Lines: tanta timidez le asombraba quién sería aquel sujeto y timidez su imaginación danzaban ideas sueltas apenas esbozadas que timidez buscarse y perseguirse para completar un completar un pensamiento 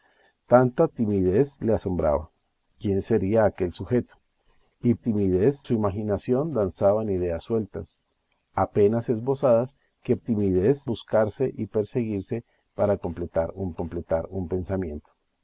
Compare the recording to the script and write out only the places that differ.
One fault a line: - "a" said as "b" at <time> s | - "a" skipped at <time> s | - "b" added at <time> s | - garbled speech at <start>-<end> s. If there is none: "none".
none